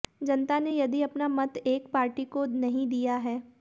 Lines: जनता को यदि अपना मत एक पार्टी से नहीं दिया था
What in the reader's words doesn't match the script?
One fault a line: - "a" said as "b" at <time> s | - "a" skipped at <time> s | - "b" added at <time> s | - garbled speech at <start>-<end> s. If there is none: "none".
- "को" said as "ने" at 0.6 s
- "से" said as "को" at 2.3 s
- "था" said as "है" at 3.2 s